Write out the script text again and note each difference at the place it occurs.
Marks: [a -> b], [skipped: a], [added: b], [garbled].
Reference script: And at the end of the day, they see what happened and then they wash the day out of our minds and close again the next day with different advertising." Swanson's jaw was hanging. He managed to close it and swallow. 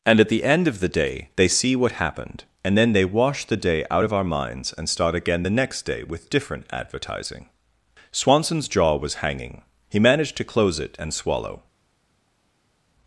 And at the end of the day, they see what happened and then they wash the day out of our minds and [close -> start] again the next day with different advertising." Swanson's jaw was hanging. He managed to close it and swallow.